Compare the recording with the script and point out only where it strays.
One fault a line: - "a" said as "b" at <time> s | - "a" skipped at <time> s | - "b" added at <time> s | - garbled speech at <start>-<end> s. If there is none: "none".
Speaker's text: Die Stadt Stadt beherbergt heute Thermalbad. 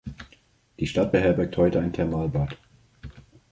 - "Stadt" skipped at 1.1 s
- "ein" added at 1.8 s